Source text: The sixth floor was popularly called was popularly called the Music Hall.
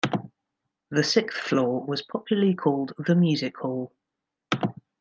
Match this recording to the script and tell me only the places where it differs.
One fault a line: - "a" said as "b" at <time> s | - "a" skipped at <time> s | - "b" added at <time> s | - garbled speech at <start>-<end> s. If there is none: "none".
- "was popularly called" skipped at 2.9 s